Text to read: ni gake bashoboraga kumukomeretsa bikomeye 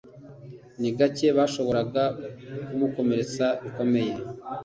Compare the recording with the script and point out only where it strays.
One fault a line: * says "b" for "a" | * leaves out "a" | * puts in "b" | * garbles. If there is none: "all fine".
all fine